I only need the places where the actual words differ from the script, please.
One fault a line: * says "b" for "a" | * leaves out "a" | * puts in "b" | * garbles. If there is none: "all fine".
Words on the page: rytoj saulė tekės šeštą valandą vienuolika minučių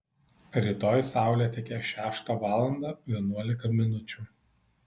all fine